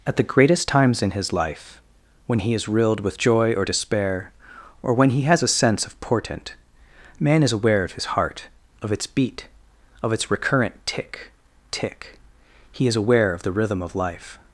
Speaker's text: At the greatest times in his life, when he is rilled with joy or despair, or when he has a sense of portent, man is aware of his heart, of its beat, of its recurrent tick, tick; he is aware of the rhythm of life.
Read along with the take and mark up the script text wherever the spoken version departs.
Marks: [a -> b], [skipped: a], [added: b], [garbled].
At the greatest times in his life, when he is rilled with joy or despair, or when he has a sense of portent, man is aware of his heart, of its beat, of its recurrent tick, tick; he is aware of the rhythm of life.